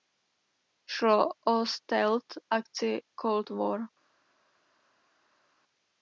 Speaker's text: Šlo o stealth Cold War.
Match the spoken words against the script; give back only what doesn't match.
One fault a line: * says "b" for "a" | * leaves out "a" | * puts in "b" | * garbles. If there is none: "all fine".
* puts in "akci"